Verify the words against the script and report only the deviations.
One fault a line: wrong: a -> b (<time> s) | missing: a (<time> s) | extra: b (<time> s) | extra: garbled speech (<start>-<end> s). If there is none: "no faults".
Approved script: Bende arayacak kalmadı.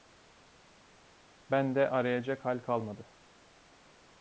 extra: hal (2.4 s)